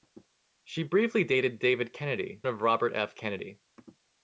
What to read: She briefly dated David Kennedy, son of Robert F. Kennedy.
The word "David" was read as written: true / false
true